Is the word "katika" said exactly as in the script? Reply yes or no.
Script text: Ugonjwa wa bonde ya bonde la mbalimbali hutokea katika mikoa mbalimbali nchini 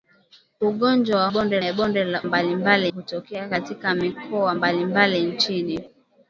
yes